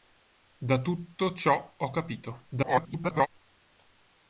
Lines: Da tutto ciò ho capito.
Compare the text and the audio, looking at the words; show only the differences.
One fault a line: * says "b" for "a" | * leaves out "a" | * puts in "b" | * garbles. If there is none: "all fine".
* garbles